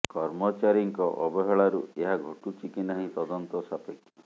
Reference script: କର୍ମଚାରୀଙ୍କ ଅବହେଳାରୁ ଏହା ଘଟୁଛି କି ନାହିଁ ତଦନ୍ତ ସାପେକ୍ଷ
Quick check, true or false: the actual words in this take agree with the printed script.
true